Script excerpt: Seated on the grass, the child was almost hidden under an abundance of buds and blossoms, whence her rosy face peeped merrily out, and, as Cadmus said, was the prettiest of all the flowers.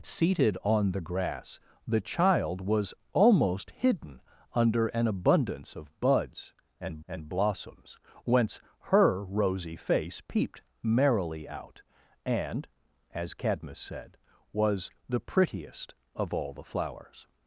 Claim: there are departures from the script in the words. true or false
true